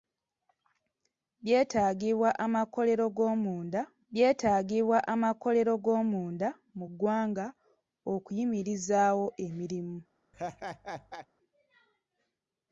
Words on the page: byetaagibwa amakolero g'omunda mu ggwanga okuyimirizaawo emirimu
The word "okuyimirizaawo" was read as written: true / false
true